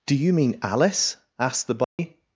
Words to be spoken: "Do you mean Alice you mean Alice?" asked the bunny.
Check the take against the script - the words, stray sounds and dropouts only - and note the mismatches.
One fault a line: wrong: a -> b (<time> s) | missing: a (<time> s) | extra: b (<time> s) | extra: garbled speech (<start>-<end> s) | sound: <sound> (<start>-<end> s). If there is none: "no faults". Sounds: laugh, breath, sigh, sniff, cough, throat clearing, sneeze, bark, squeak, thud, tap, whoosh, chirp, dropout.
missing: you mean Alice (1.2 s)
sound: dropout (1.8-2.0 s)